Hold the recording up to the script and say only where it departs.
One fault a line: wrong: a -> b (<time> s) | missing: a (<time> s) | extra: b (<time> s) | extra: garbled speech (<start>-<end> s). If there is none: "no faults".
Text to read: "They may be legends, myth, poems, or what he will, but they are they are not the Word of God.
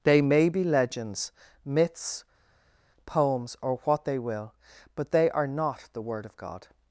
wrong: myth -> myths (1.6 s)
wrong: he -> they (4.0 s)
missing: they are (5.5 s)